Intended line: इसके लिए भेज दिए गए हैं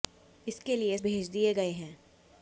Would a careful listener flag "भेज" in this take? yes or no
no